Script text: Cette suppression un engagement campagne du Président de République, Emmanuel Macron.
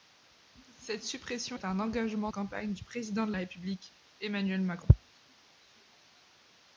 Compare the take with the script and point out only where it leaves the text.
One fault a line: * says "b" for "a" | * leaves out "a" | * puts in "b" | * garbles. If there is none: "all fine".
all fine